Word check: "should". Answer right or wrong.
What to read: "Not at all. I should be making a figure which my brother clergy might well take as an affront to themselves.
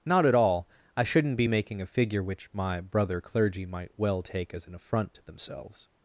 wrong